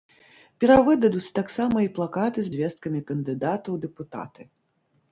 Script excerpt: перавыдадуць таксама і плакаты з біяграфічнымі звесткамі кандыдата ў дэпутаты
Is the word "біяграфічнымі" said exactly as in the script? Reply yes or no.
no